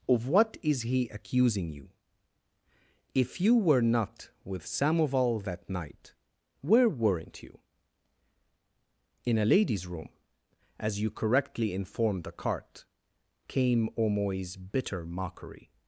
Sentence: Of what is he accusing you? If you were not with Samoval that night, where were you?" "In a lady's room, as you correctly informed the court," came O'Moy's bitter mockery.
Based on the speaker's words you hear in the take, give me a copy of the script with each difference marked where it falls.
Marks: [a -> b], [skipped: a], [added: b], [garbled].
Of what is he accusing you? If you were not with Samoval that night, where [were -> weren't] you?" "In a lady's room, as you correctly informed the [court," -> cart] came O'Moy's bitter mockery.